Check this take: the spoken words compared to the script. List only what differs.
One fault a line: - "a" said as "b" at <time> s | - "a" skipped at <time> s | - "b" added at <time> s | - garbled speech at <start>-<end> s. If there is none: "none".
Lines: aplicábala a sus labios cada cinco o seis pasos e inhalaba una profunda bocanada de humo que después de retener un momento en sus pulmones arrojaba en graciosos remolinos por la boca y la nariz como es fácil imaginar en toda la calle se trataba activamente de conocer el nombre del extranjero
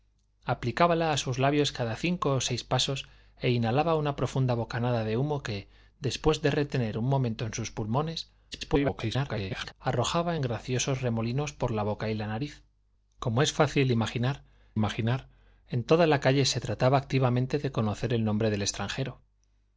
- garbled speech at 8.5-9.7 s
- "imaginar" added at 14.7 s